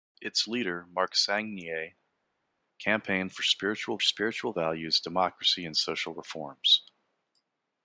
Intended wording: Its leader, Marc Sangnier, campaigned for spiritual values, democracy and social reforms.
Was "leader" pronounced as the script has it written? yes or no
yes